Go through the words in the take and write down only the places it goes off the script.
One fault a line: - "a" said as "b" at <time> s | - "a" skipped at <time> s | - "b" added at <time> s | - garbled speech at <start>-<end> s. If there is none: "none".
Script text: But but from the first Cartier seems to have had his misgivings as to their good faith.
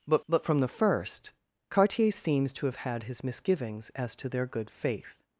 none